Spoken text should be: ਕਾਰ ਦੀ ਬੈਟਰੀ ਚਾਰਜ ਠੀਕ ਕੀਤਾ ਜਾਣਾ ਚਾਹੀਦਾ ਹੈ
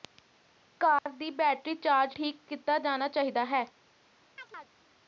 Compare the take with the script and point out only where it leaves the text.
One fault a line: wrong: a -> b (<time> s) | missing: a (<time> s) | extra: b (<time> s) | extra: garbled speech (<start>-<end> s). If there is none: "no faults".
no faults